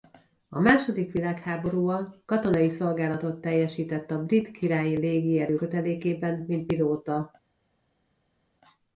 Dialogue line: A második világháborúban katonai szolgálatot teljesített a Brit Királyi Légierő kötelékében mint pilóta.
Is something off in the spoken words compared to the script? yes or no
no